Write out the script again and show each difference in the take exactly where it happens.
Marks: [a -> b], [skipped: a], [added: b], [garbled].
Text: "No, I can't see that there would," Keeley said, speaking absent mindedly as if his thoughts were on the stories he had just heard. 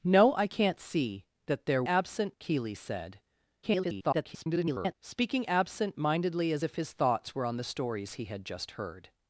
"No, I can't see that there [would," -> absent] Keeley said, [garbled] speaking absent mindedly as if his thoughts were on the stories he had just heard.